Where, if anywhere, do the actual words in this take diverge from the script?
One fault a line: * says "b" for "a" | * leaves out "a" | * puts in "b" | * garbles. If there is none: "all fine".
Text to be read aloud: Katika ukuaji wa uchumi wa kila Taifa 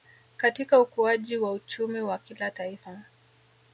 all fine